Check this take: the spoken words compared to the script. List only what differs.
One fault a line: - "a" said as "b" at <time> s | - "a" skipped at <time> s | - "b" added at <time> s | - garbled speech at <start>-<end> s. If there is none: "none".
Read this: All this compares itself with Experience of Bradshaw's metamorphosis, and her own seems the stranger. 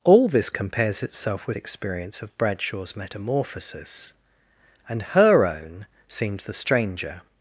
none